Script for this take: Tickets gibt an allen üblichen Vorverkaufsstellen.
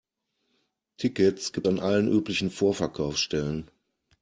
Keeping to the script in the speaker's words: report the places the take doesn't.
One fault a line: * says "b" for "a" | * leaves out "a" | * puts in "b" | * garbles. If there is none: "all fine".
all fine